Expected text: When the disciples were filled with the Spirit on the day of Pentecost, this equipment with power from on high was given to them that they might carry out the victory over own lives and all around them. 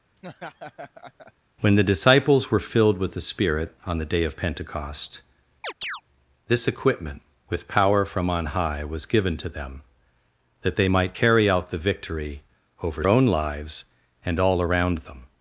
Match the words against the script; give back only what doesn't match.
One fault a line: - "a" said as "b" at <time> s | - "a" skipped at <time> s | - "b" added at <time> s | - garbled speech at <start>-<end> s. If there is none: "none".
none